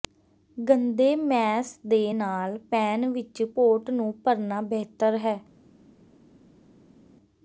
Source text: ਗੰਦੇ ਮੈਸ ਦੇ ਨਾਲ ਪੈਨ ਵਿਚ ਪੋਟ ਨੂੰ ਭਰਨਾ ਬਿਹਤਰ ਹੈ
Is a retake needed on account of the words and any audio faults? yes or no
no